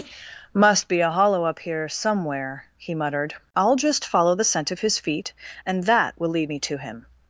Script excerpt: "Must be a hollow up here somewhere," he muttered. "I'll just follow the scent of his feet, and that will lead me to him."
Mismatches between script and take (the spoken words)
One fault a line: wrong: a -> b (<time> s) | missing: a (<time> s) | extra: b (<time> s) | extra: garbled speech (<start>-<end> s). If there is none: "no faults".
no faults